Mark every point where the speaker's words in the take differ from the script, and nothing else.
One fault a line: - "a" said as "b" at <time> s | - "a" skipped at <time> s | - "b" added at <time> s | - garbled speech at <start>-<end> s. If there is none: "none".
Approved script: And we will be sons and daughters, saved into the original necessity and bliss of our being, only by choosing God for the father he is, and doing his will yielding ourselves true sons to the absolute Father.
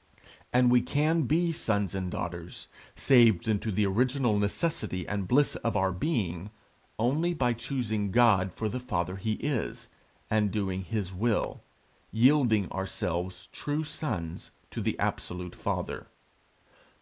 - "will" said as "can" at 0.8 s